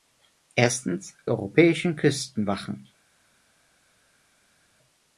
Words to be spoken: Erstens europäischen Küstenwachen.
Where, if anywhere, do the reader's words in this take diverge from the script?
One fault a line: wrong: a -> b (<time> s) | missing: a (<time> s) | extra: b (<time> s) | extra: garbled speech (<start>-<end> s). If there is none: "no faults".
no faults